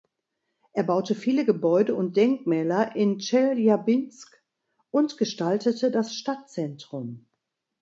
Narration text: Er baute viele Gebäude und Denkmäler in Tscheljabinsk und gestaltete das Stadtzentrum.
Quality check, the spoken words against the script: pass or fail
pass